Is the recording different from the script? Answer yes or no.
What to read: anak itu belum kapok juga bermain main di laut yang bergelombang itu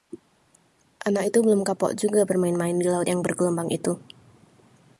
no